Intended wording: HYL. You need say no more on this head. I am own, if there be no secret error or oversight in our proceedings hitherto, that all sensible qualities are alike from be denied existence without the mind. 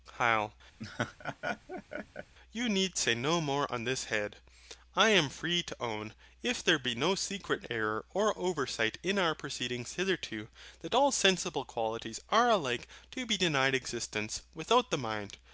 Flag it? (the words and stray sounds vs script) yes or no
yes